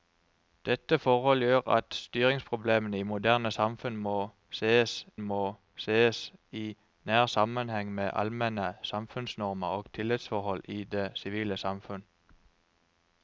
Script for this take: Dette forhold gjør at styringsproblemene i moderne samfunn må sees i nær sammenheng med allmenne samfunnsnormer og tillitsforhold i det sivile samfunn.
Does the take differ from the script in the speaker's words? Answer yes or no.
yes